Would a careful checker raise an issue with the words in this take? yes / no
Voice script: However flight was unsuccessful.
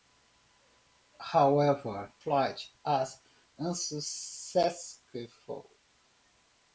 no